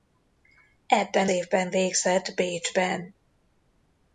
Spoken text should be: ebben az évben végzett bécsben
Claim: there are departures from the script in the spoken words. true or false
true